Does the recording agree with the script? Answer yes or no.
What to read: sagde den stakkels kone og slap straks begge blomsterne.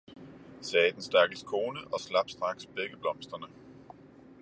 yes